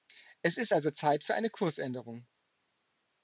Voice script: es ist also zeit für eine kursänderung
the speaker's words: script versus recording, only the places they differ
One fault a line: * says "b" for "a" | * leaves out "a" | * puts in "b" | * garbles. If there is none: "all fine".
all fine